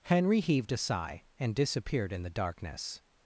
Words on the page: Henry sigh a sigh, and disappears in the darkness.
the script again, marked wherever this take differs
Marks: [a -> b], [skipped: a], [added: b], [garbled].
Henry [sigh -> heaved] a sigh, and [disappears -> disappeared] in the darkness.